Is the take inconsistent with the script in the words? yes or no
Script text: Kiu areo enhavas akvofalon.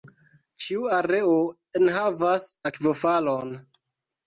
yes